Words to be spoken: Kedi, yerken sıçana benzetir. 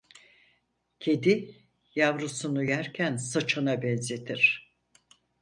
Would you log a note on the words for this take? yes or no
yes